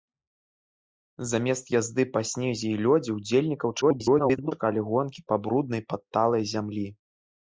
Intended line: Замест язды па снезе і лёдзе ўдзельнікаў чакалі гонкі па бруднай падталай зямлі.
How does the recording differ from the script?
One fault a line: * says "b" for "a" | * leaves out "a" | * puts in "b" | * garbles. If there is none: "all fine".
* garbles